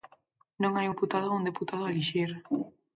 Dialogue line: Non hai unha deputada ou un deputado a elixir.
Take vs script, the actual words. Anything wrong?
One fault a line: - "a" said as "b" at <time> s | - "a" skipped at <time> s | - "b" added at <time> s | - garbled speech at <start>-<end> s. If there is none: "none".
- "unha" skipped at 0.9 s